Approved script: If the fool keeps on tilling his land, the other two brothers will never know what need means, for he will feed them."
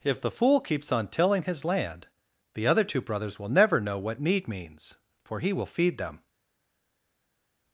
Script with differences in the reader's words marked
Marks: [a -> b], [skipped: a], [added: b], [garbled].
If the fool keeps on tilling his land, the other two brothers will never know what need means, for he will feed them."